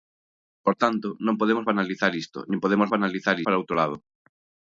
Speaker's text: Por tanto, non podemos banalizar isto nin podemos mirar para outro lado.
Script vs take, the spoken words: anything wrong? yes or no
yes